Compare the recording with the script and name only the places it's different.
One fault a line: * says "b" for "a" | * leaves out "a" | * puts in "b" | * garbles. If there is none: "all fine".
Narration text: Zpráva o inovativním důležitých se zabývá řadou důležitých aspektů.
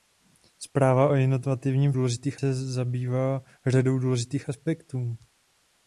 all fine